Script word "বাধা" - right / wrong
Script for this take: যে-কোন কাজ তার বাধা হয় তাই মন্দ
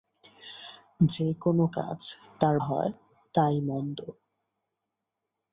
wrong